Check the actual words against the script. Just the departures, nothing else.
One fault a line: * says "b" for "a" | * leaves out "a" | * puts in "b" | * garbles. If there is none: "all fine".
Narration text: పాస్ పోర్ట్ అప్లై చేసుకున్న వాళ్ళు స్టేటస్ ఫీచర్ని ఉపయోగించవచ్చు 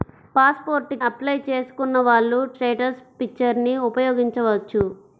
all fine